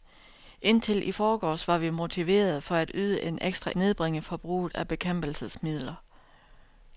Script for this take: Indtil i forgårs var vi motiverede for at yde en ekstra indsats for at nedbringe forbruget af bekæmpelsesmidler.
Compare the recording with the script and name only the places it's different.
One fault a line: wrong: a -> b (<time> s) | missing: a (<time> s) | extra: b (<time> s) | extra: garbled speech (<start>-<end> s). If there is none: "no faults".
missing: indsats for at (3.7 s)